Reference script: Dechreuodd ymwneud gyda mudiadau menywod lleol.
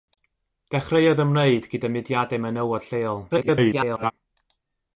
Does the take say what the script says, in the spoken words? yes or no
no